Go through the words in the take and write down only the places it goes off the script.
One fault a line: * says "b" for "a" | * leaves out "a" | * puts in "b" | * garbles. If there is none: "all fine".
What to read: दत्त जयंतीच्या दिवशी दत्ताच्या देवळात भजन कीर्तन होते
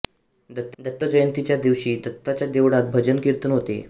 * puts in "दत्त"